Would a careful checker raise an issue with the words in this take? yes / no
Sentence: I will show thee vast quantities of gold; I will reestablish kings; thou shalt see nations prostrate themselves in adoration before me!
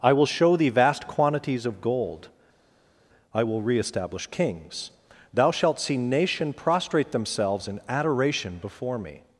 yes